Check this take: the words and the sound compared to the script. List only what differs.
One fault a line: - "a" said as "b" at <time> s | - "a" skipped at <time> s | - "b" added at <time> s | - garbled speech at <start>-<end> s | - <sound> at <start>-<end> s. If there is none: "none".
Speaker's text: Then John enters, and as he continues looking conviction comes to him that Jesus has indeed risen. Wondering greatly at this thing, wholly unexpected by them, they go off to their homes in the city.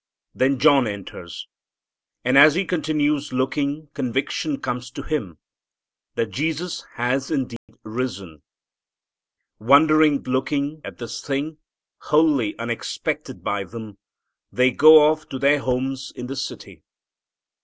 - dropout at 7.6-7.7 s
- "greatly" said as "looking" at 10.3 s